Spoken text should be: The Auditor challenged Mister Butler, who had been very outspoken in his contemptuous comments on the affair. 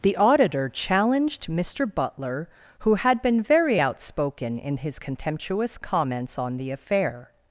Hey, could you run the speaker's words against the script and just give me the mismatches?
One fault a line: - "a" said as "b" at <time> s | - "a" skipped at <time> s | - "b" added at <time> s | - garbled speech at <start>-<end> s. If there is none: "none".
none